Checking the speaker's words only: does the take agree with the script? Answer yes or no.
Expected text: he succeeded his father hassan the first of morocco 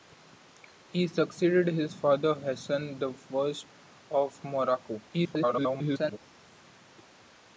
no